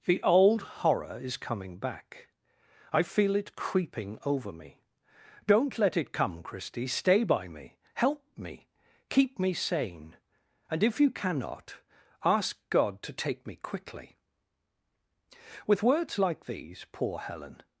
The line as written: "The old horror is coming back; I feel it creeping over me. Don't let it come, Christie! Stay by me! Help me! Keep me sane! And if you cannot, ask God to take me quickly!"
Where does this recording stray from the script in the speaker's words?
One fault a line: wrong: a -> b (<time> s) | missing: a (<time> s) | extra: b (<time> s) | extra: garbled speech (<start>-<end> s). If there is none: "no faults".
extra: With words like these poor Helen (15.7 s)